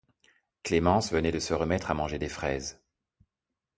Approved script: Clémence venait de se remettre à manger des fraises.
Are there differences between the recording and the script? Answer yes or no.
no